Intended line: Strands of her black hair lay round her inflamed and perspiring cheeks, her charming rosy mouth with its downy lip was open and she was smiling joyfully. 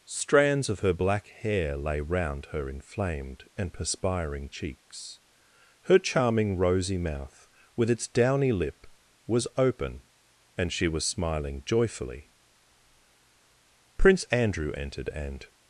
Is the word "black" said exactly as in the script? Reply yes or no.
yes